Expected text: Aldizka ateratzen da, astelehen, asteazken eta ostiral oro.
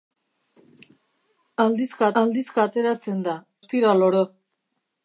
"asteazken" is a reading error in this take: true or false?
true